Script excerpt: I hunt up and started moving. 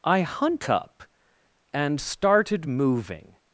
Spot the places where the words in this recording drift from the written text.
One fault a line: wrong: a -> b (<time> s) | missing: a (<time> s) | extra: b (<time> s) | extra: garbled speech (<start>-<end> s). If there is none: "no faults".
no faults